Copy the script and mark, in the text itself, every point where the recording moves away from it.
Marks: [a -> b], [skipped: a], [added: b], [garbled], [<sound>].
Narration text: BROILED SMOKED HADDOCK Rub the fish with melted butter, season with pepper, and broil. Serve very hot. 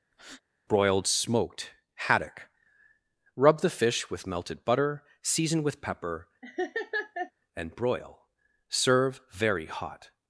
[breath] BROILED SMOKED HADDOCK Rub the fish with melted butter, season with pepper, [laugh] and broil. Serve very hot.